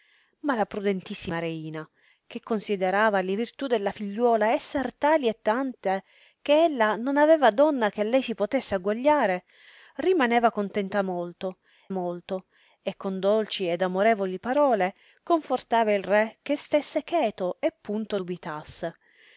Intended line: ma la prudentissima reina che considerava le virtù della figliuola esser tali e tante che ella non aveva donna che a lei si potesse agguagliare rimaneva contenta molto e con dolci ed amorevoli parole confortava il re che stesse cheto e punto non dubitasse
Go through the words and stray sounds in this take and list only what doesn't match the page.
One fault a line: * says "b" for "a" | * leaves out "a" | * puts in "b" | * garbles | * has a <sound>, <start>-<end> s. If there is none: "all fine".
* puts in "molto"
* leaves out "non"